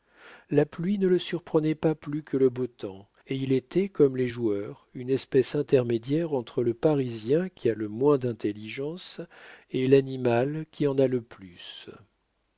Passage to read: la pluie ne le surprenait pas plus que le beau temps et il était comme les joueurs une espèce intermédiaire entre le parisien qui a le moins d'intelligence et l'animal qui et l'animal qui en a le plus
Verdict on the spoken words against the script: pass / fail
fail